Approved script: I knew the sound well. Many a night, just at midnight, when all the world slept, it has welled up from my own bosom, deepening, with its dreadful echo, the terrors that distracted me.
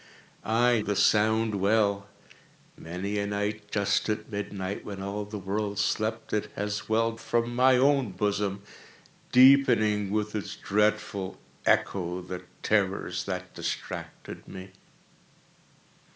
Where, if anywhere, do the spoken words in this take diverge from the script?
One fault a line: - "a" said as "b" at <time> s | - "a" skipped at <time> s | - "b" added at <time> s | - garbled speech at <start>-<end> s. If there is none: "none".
- "knew" skipped at 0.8 s
- "up" skipped at 7.2 s